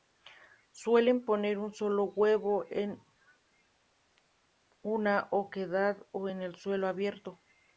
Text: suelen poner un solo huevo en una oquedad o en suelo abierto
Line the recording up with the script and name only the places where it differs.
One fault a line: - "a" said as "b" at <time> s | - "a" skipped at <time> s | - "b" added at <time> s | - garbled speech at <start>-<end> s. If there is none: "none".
none